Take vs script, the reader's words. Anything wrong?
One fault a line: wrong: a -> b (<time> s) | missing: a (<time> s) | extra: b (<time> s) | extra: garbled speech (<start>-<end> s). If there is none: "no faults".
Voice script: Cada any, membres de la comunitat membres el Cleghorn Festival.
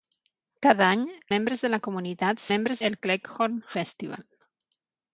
no faults